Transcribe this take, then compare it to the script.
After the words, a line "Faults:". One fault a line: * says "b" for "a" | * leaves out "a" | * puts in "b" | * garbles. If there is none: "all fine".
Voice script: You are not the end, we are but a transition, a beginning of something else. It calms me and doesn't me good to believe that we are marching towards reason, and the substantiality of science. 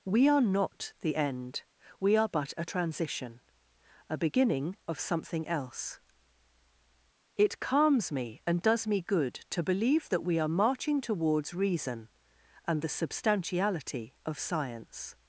We are not the end, we are but a transition, a beginning of something else. It calms me and does me good to believe that we are marching towards reason, and the substantiality of science.
Faults:
* says "We" for "You"
* says "does" for "doesn't"